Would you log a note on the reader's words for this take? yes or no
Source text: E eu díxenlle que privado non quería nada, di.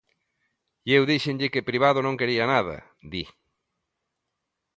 no